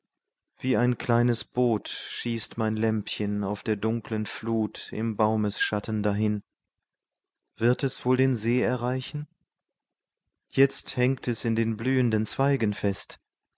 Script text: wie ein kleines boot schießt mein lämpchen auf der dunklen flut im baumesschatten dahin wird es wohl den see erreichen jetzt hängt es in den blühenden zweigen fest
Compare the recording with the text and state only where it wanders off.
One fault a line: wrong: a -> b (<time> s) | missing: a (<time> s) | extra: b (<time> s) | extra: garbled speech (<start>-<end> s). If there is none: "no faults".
no faults